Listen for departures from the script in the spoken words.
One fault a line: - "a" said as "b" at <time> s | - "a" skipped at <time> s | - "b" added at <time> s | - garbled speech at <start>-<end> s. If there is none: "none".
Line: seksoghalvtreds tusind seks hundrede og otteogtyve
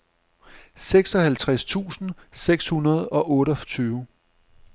none